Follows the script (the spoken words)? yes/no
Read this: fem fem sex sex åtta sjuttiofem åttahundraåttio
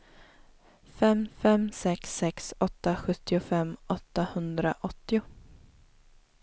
yes